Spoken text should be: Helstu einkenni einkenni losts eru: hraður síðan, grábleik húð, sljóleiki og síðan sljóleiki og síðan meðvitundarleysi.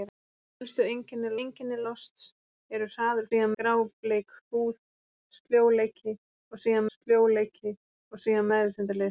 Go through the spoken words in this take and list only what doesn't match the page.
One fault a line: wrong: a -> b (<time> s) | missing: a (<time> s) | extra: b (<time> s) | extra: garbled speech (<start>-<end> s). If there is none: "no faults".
no faults